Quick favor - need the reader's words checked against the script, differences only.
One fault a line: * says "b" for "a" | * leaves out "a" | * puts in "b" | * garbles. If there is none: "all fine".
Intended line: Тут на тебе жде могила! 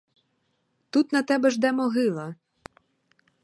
all fine